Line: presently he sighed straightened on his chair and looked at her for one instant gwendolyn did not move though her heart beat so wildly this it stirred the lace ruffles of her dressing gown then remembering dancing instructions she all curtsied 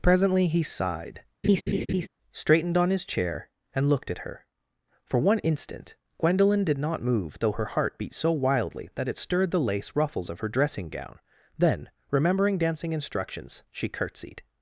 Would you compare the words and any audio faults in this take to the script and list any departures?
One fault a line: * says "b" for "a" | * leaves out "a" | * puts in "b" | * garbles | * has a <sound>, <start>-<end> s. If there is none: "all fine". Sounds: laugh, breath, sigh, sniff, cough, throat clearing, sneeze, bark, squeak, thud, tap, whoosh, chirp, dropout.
* has a laugh, 1.4-2.1 s
* says "that" for "this"
* leaves out "all"